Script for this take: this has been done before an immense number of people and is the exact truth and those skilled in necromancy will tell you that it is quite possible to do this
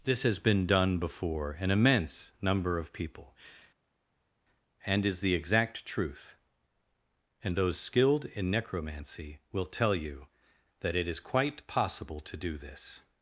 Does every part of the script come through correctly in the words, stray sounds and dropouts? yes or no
yes